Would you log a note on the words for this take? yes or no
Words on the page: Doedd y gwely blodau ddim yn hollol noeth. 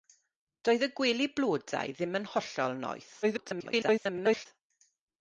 yes